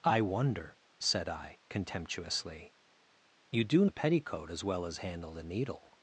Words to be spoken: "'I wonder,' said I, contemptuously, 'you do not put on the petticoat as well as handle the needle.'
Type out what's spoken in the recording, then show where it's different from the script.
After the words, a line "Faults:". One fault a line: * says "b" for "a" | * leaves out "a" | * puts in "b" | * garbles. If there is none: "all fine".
"'I wonder,' said I, contemptuously, 'you do the petticoat as well as handle the needle.'
Faults:
* leaves out "not put on"